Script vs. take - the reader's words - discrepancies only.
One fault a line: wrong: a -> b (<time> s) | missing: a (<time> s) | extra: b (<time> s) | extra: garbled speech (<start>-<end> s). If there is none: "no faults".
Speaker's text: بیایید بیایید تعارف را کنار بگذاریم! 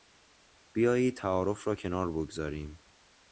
missing: بیایید (1.2 s)